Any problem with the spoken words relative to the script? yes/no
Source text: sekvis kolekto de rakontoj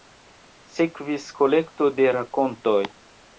no